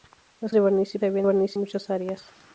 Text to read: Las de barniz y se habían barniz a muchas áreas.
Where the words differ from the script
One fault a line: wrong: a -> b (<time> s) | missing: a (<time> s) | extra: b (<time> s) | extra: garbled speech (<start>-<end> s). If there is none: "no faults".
no faults